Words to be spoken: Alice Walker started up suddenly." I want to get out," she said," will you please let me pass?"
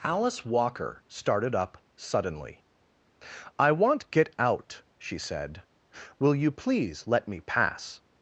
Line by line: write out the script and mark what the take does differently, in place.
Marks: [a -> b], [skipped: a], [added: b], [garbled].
Alice Walker started up suddenly." I want [skipped: to] get out," she said," will you please let me pass?"